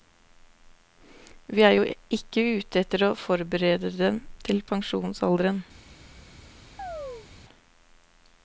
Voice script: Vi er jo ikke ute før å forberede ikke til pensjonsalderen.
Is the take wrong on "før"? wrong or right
wrong